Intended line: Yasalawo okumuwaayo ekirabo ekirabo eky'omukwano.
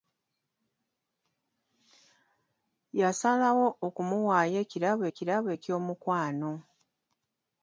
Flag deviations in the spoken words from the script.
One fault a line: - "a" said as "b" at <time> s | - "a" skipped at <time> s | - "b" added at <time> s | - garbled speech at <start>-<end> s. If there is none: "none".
none